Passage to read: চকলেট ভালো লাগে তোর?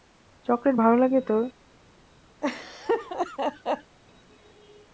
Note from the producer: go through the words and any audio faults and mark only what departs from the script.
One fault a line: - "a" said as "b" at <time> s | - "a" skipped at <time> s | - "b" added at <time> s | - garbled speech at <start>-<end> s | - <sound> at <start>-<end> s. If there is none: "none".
- laugh at 2.4-4.0 s